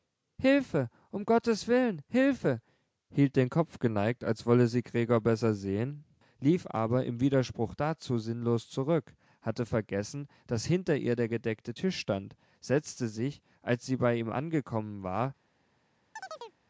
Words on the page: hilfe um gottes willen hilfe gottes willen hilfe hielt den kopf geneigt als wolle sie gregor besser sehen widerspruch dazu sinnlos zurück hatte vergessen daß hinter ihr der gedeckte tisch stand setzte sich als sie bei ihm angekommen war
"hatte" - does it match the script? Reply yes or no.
yes